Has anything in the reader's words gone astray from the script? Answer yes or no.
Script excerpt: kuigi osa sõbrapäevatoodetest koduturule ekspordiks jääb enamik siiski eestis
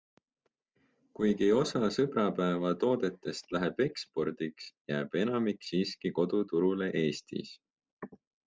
yes